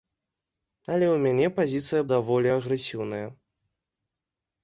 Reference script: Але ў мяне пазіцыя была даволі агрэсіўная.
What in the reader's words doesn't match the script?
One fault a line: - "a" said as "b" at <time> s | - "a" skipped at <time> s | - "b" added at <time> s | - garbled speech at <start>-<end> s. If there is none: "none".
- "была" skipped at 2.0 s